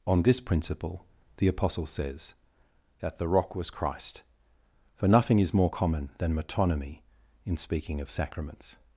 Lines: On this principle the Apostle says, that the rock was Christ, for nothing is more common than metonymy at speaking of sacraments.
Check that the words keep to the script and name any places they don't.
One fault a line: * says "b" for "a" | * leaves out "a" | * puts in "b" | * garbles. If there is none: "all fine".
* says "in" for "at"